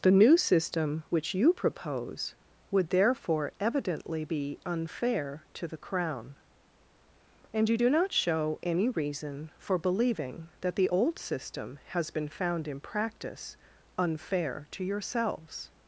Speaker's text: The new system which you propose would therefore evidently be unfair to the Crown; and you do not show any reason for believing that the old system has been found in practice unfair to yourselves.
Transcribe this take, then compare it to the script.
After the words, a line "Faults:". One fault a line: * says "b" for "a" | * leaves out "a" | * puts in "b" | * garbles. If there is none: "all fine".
The new system which you propose would therefore evidently be unfair to the Crown; and you do not show any reason for believing that the old system has been found in practice unfair to yourselves.
Faults:
all fine